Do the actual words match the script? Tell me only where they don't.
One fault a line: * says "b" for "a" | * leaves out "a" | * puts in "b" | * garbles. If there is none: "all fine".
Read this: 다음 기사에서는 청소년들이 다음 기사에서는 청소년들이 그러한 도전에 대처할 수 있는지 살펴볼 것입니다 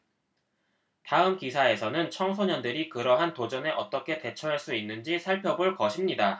* leaves out "다음 기사에서는 청소년들이"
* puts in "어떻게"